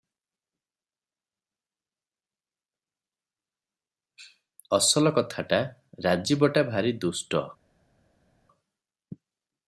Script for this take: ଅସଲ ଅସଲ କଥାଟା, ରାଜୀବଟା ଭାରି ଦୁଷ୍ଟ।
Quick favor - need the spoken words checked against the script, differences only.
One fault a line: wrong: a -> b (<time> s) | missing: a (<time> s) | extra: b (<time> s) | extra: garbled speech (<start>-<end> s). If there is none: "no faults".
missing: ଅସଲ (5.1 s)